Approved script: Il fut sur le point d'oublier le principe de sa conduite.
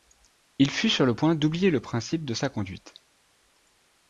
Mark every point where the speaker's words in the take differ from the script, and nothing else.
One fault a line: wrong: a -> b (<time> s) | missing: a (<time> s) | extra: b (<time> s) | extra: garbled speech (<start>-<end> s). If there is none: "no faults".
no faults